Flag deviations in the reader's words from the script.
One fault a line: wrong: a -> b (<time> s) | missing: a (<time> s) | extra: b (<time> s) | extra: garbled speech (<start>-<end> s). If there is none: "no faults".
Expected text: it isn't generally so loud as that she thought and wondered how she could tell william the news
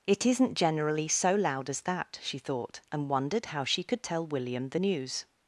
no faults